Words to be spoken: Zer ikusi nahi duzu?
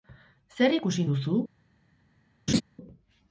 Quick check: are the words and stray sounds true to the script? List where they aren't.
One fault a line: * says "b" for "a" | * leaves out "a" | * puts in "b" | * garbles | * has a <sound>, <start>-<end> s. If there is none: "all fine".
* leaves out "nahi"
* has a laugh, 2.5-2.6 s